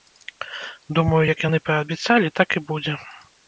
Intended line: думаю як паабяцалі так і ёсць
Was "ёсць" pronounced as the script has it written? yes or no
no